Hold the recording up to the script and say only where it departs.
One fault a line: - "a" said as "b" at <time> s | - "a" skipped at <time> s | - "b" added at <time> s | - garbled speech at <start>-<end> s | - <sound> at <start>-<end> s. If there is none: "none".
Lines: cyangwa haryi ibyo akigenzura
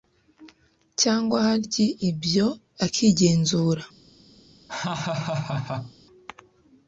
- laugh at 4.7-5.9 s